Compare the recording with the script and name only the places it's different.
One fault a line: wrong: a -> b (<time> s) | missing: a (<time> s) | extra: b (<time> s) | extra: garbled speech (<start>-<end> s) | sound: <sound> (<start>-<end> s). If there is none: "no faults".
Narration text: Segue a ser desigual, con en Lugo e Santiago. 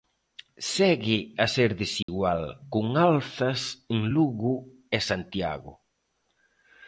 sound: dropout (2.0-2.1 s)
extra: alzas (3.0 s)